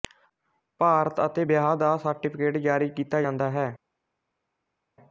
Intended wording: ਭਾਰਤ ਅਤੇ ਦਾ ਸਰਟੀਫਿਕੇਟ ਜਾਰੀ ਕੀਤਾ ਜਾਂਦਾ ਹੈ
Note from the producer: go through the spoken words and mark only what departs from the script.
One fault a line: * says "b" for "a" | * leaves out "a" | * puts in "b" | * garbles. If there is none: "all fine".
* puts in "ਵਿਆਹ"